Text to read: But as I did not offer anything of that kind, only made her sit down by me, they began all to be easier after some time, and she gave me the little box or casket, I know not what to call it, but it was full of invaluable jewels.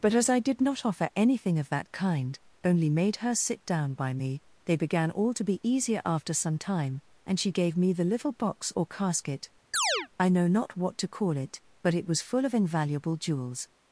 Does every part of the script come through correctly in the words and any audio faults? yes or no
no